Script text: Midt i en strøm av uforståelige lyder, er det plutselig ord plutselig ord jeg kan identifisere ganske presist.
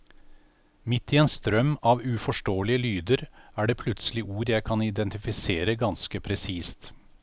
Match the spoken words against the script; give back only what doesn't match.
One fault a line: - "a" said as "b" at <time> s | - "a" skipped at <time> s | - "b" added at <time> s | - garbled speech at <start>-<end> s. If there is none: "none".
- "plutselig ord" skipped at 4.5 s